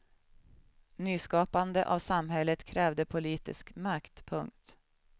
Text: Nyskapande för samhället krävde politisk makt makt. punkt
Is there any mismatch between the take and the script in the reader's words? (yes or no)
yes